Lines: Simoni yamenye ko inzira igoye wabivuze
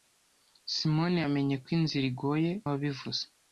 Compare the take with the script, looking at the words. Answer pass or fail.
pass